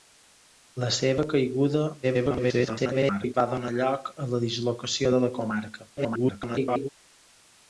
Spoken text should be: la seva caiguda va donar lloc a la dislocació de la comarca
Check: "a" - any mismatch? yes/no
no